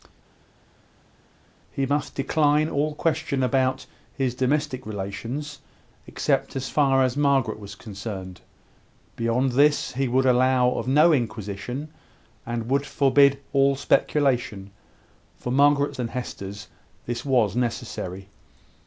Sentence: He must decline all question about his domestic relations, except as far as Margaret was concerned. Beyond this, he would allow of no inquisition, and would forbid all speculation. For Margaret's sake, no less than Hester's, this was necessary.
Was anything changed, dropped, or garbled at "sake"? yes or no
yes